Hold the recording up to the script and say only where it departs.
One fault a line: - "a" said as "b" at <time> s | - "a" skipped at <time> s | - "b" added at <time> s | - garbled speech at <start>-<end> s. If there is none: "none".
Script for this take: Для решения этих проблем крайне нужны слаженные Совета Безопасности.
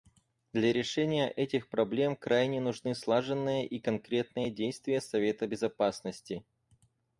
- "и конкретные действия" added at 3.7 s